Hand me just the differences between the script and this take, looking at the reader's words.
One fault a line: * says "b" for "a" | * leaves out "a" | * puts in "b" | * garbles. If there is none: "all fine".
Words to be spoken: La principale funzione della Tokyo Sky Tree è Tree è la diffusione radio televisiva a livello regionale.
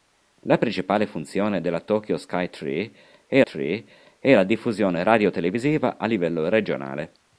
all fine